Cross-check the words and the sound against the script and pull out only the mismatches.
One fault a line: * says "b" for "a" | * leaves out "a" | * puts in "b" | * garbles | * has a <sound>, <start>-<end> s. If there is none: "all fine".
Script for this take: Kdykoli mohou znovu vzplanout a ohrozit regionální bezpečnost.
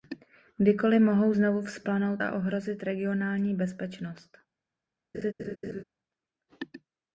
* has a laugh, 5.1-5.8 s